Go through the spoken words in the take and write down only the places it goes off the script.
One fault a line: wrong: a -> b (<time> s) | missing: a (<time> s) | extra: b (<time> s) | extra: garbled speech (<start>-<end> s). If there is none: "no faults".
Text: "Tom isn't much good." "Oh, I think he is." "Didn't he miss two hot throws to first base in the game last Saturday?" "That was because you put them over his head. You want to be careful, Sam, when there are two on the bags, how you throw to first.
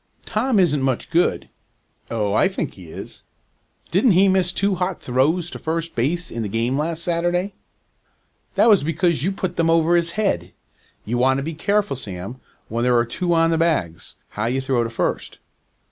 no faults